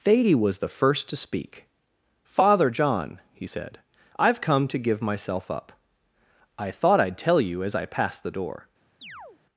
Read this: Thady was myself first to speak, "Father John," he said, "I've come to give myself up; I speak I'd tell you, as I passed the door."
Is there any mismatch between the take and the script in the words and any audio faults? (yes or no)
yes